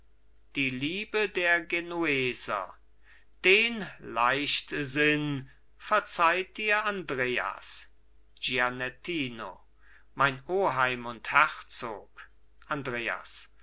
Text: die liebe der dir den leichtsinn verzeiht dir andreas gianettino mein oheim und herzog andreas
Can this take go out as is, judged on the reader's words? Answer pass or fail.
fail